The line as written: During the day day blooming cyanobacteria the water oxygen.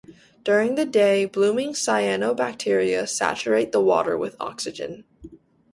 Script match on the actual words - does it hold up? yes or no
no